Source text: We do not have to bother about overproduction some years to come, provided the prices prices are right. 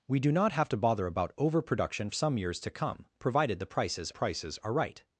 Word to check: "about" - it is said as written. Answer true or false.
true